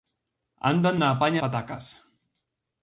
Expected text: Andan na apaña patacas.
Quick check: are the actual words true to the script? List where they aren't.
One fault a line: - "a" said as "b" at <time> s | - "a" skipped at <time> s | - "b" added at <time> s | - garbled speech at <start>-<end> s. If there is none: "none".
none